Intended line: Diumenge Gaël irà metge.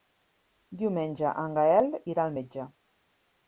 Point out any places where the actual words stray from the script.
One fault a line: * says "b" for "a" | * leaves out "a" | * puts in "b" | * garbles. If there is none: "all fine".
* puts in "en"
* puts in "al"